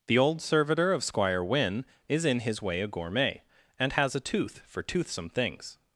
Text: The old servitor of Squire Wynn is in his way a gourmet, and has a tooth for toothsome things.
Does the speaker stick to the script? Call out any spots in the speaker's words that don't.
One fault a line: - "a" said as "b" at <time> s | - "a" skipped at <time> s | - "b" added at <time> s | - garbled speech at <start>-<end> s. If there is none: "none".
none